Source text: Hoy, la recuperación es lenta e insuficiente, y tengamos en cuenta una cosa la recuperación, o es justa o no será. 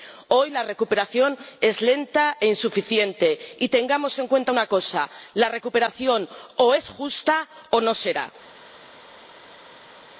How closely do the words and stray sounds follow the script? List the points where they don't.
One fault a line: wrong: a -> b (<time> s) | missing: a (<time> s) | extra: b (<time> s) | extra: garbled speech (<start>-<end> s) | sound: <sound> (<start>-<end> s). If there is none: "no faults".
no faults